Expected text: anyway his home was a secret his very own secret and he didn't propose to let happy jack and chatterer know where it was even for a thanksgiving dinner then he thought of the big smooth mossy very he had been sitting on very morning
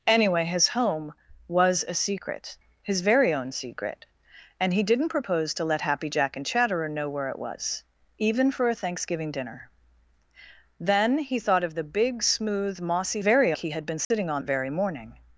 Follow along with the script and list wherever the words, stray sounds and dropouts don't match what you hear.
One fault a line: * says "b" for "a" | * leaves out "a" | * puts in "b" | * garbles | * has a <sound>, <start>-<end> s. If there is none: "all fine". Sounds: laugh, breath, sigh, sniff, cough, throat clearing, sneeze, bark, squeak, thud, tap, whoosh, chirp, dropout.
* has a dropout, 14.0-14.1 s